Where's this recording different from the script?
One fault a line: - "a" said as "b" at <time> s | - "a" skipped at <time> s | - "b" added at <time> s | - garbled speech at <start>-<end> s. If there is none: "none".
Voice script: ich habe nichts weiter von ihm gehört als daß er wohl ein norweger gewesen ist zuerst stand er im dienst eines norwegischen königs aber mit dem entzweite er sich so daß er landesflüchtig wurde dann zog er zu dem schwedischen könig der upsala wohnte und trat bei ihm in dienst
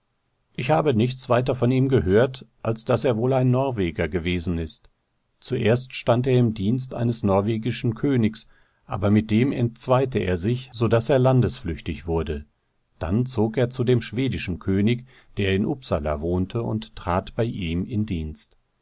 - "in" added at 15.5 s